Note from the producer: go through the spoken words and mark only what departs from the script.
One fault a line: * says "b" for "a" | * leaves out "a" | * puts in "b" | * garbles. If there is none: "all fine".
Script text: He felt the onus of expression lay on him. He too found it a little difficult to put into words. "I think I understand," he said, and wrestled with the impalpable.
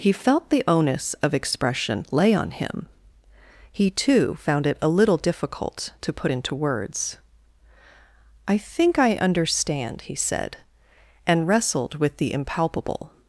all fine